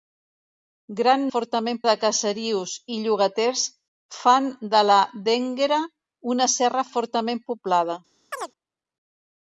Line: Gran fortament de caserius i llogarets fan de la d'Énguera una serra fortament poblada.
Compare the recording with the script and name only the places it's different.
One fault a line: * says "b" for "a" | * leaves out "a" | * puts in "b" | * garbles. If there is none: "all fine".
all fine